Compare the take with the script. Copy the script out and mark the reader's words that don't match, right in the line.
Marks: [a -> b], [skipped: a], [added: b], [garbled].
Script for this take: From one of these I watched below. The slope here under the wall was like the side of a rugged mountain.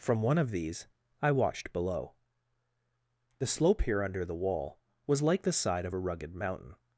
From one of these I watched below. The slope here under the wall was like the side of a rugged mountain.